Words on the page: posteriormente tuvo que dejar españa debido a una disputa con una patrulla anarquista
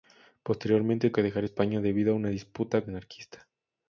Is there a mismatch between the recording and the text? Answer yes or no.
yes